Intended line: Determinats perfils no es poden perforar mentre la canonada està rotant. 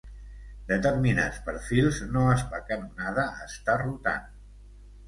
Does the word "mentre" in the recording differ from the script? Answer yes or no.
yes